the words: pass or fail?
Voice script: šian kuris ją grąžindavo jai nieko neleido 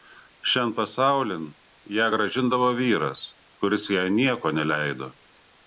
fail